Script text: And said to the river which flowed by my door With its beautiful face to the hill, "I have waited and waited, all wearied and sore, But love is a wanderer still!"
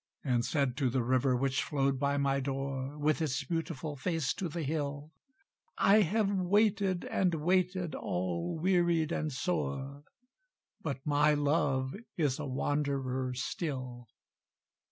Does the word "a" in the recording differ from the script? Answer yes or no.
no